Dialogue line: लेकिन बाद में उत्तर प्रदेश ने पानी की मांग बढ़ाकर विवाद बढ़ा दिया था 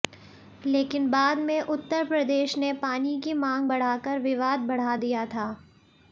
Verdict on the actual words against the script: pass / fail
pass